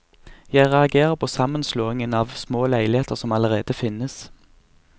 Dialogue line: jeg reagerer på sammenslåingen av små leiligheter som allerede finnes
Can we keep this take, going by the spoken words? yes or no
yes